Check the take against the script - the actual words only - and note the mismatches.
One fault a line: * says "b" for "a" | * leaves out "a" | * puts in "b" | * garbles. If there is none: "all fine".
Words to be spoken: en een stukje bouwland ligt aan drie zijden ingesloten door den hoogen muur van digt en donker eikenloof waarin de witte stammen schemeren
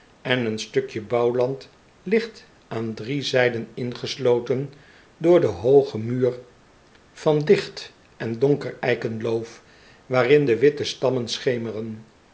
all fine